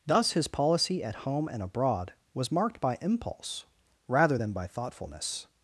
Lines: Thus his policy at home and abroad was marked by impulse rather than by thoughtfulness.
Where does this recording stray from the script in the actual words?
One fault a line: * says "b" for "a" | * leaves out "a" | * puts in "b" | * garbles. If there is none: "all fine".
all fine